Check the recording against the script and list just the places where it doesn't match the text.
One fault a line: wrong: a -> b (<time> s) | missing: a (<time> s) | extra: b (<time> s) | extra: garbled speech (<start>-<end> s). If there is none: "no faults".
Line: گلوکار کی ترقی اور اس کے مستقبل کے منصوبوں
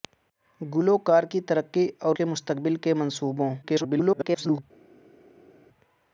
missing: اس (2.1 s)
extra: garbled speech (3.6-4.6 s)